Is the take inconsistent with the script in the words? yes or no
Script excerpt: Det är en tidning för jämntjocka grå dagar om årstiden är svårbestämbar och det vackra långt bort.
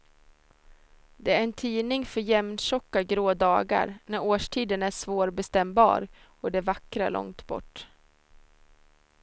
yes